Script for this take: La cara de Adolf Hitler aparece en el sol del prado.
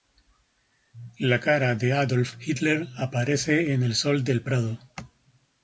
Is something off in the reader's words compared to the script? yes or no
no